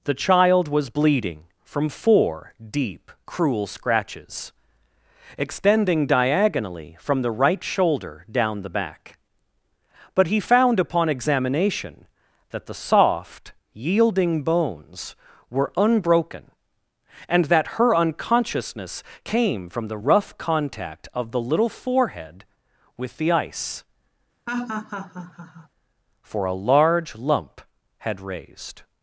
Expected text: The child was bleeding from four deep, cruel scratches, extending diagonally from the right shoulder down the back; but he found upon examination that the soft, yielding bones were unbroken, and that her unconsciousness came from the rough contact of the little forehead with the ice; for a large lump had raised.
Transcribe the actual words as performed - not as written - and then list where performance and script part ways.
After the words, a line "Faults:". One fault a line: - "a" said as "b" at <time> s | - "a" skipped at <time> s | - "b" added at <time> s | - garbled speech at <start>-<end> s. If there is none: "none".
The child was bleeding from four deep, cruel scratches, extending diagonally from the right shoulder down the back; but he found upon examination that the soft, yielding bones were unbroken, and that her unconsciousness came from the rough contact of the little forehead with the ice; for a large lump had raised.
Faults:
none